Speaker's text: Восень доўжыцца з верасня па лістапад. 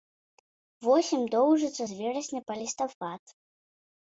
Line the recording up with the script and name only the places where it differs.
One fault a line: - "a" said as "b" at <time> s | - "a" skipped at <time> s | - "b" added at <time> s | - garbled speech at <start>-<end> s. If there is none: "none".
none